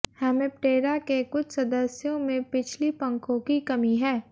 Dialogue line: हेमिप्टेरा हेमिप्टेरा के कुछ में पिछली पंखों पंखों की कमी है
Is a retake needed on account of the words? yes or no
yes